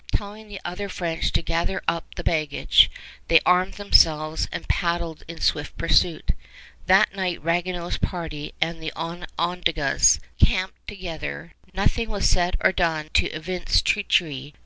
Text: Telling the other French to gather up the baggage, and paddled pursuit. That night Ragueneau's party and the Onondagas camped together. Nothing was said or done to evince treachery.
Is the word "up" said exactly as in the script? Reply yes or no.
yes